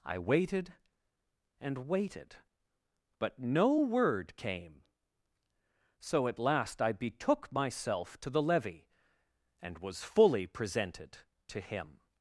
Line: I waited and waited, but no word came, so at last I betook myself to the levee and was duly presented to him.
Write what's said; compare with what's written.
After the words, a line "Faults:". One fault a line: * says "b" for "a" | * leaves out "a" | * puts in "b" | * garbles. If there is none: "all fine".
I waited and waited, but no word came, so at last I betook myself to the levee and was fully presented to him.
Faults:
* says "fully" for "duly"